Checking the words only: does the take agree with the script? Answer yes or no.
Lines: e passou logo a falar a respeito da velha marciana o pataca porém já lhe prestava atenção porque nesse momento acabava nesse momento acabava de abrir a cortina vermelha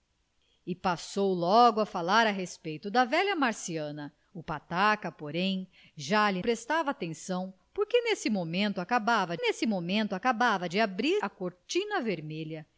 yes